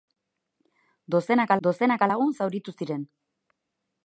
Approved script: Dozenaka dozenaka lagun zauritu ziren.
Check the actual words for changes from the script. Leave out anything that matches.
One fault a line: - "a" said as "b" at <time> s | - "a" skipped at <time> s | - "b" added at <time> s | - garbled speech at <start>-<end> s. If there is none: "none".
none